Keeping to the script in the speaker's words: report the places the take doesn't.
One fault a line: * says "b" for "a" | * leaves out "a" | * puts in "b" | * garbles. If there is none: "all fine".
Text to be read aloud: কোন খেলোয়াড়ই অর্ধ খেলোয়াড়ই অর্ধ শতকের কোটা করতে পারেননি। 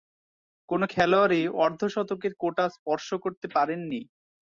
* leaves out "খেলোয়াড়ই অর্ধ"
* puts in "স্পর্শ"